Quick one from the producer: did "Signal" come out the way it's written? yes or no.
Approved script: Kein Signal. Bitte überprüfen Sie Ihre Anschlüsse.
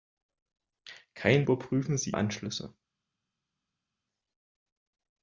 no